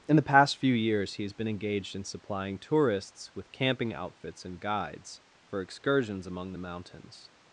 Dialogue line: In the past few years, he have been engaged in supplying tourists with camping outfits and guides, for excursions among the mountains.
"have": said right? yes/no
no